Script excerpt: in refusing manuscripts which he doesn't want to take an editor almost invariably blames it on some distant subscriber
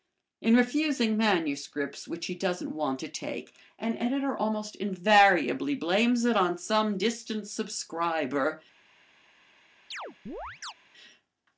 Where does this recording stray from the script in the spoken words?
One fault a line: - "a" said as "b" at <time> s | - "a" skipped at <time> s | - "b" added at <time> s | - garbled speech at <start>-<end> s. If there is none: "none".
none